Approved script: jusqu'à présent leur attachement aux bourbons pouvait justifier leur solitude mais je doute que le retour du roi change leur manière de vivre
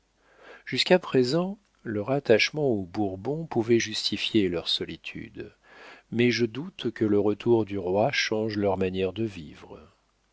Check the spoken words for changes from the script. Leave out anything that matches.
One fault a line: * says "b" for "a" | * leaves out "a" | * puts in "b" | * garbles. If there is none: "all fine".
all fine